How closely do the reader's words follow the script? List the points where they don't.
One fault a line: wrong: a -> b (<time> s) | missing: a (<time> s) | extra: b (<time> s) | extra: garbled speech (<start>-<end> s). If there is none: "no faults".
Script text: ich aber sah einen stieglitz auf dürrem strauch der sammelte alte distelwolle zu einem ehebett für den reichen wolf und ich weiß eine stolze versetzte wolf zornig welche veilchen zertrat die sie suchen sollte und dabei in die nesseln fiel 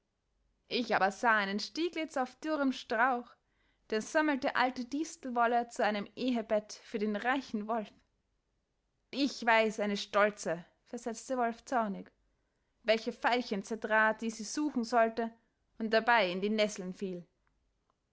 missing: und (7.9 s)